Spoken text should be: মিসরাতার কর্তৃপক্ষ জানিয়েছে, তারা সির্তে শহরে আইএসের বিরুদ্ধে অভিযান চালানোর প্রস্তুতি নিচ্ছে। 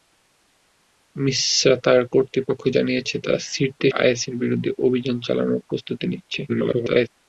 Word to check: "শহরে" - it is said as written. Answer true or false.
false